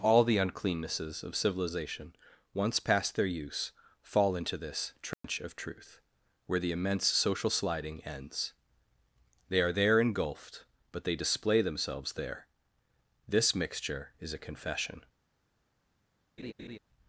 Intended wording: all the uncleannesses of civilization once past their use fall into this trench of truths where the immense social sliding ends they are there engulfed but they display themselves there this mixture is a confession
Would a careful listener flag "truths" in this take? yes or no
yes